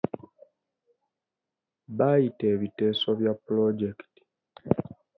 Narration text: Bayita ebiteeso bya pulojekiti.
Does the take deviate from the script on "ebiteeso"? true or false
false